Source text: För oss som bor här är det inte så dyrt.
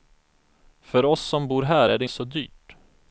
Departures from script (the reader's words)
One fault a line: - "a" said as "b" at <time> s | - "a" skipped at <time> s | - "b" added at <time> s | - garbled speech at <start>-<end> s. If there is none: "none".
- "inte" skipped at 2.0 s